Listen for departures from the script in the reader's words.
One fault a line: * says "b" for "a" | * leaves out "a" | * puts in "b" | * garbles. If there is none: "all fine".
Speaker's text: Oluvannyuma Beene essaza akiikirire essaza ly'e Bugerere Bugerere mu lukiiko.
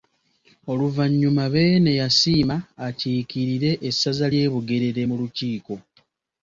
* says "yasiima" for "essaza"
* leaves out "Bugerere"